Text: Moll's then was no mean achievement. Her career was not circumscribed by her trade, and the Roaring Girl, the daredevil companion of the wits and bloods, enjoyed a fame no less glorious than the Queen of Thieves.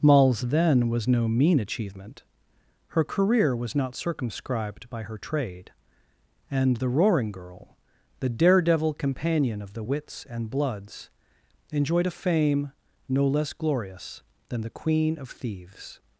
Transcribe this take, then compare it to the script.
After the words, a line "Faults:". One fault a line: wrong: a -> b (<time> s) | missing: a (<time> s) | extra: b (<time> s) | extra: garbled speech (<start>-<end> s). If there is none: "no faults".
Moll's then was no mean achievement. Her career was not circumscribed by her trade, and the Roaring Girl, the daredevil companion of the wits and bloods, enjoyed a fame no less glorious than the Queen of Thieves.
Faults:
no faults